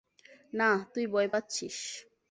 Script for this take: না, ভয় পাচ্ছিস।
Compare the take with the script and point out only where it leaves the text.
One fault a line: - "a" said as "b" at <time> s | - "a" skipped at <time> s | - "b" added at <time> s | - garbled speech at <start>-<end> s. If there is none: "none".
- "তুই" added at 0.9 s